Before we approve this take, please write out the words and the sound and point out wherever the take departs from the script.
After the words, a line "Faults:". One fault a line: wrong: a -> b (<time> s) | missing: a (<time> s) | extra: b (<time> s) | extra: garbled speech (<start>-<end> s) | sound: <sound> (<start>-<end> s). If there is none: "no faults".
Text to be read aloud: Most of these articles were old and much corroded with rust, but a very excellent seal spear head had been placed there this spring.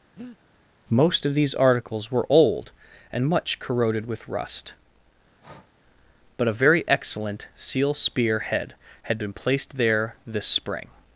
Most of these articles were old and much corroded with rust, but a very excellent seal spear head had been placed there this spring.
Faults:
sound: breath (0.2-0.4 s)
sound: breath (5.4-5.7 s)